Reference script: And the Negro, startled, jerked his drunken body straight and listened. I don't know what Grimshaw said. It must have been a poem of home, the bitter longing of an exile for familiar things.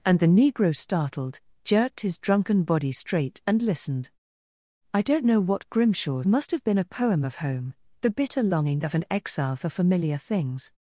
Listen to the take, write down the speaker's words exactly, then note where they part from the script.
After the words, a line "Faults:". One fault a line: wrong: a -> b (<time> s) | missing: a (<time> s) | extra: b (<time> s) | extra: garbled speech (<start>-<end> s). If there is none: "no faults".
And the Negro, startled, jerked his drunken body straight and listened. I don't know what Grimshaw must have been a poem of home, the bitter longing of an exile for familiar things.
Faults:
missing: said It (6.2 s)